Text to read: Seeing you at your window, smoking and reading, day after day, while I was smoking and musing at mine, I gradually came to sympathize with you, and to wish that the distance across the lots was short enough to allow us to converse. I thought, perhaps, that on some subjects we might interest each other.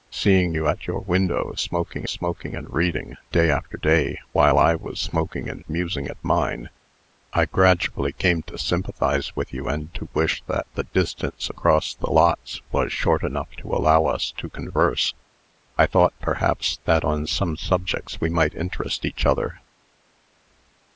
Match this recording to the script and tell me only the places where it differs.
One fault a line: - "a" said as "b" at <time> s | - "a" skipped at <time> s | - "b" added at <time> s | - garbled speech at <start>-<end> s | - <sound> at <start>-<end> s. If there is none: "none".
- "smoking" added at 2.0 s